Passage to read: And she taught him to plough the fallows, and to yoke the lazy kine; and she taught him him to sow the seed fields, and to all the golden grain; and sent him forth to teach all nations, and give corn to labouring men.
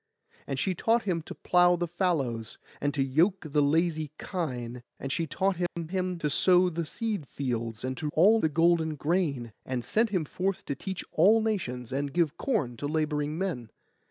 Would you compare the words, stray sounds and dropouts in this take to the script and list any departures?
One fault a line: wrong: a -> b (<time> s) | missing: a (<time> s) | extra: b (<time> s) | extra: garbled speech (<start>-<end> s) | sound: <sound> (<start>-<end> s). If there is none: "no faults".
sound: dropout (5.7-5.8 s)